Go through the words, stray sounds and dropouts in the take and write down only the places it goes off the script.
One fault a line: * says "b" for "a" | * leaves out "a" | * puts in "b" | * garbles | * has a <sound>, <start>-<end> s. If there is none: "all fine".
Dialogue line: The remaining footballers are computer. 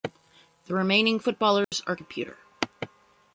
* has a dropout, 1.6-1.7 s